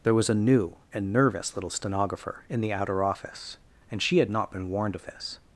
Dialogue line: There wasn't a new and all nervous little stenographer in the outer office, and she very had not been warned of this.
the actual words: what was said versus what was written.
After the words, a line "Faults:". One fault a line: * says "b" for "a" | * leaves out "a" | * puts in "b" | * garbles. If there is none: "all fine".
There was a new and nervous little stenographer in the outer office, and she had not been warned of this.
Faults:
* says "was" for "wasn't"
* leaves out "all"
* leaves out "very"